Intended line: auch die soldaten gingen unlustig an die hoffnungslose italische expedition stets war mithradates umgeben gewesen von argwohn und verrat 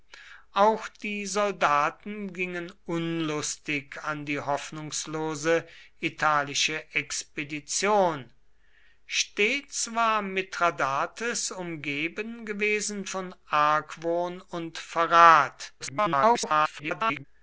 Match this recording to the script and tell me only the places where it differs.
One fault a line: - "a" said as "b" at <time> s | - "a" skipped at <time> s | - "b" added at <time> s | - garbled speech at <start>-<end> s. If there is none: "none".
- garbled speech at 15.8-17.2 s